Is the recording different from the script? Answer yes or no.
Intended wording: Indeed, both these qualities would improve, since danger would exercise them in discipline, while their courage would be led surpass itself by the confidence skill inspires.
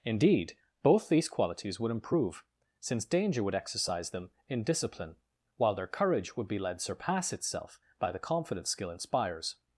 no